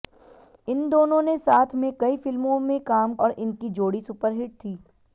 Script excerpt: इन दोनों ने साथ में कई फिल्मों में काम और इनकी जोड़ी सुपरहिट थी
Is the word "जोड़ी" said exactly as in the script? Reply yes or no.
yes